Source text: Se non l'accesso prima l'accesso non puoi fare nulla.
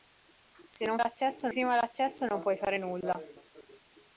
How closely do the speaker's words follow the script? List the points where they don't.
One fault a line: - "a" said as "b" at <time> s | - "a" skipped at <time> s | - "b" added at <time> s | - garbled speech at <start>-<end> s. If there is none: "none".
none